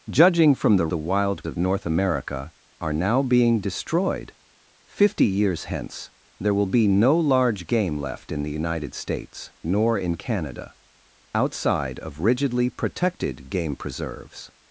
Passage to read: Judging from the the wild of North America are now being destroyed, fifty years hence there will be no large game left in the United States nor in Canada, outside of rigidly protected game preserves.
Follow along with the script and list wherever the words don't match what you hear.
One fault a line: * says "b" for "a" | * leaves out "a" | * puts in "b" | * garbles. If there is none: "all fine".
all fine